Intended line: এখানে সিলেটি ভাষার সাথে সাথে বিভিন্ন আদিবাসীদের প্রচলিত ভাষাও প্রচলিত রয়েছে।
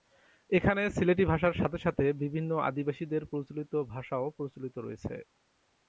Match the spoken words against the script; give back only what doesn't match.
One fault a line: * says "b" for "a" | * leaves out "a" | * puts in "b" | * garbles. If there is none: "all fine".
all fine